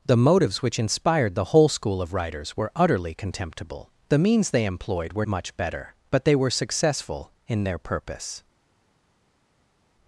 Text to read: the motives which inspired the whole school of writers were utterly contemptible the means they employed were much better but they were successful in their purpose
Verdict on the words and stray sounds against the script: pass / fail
pass